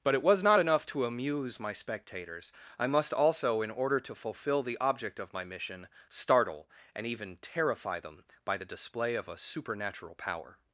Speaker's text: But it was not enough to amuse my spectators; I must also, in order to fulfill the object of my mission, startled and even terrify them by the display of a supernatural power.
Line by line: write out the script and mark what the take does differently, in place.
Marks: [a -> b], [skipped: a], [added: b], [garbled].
But it was not enough to amuse my spectators; I must also, in order to fulfill the object of my mission, [startled -> startle] and even terrify them by the display of a supernatural power.